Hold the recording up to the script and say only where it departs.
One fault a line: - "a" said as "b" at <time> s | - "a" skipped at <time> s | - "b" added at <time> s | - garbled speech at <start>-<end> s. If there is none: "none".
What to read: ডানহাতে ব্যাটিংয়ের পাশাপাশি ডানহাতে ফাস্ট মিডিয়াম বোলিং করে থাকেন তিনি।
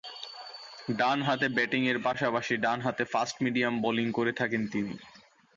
none